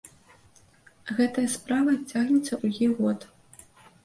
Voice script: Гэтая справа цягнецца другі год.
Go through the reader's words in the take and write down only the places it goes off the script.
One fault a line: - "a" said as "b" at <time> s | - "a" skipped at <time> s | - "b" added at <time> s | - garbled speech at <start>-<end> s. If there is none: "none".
none